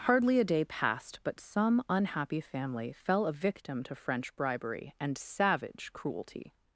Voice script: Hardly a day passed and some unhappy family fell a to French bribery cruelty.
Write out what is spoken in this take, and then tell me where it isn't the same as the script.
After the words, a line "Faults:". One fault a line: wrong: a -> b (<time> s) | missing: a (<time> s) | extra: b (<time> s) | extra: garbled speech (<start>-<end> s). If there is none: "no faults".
Hardly a day passed but some unhappy family fell a victim to French bribery and savage cruelty.
Faults:
wrong: and -> but (1.2 s)
extra: victim (3.3 s)
extra: and savage (5.0 s)